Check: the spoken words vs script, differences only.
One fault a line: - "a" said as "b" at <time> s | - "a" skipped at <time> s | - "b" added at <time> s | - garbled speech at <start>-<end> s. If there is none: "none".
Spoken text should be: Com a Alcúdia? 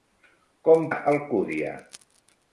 none